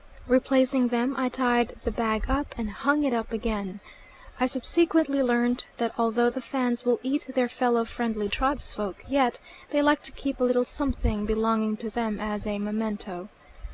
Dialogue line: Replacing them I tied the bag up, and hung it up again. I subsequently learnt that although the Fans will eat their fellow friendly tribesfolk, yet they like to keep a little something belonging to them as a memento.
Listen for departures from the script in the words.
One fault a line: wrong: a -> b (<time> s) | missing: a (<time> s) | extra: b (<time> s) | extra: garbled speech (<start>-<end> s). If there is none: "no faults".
no faults